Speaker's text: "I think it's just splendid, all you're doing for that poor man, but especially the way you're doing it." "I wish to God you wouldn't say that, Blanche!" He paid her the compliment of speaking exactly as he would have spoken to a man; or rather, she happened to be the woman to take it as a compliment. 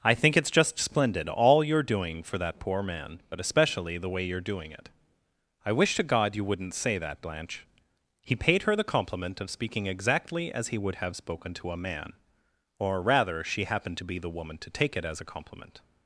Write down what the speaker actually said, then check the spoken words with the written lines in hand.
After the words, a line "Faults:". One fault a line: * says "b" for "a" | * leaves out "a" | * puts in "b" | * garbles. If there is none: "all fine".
"I think it's just splendid, all you're doing for that poor man, but especially the way you're doing it." "I wish to God you wouldn't say that, Blanche!" He paid her the compliment of speaking exactly as he would have spoken to a man; or rather, she happened to be the woman to take it as a compliment.
Faults:
all fine